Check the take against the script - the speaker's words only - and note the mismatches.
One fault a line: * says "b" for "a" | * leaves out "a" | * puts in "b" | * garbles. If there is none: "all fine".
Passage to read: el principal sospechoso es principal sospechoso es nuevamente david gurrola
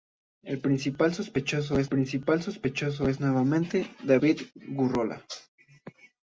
all fine